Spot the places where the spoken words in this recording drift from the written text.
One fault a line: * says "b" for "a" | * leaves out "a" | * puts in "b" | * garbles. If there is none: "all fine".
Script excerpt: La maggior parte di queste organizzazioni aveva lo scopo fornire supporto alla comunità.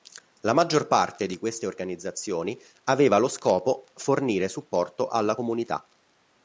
all fine